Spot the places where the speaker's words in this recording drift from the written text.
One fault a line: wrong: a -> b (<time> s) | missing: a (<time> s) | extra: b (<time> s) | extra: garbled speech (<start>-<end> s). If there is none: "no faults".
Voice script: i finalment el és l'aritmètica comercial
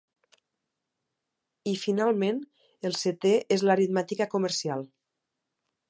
extra: setè (3.0 s)